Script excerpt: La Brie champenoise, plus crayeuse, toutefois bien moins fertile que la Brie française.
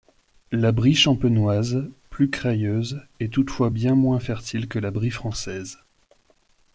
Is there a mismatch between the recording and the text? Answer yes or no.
yes